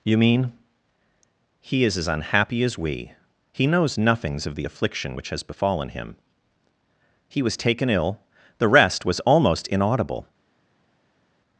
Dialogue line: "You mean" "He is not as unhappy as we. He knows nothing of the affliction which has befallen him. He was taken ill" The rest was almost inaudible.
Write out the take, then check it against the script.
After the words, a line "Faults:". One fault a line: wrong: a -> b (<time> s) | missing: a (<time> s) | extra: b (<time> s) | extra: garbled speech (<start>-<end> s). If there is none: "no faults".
"You mean" "He is as unhappy as we. He knows nothings of the affliction which has befallen him. He was taken ill" The rest was almost inaudible.
Faults:
missing: not (2.0 s)
wrong: nothing -> nothings (4.0 s)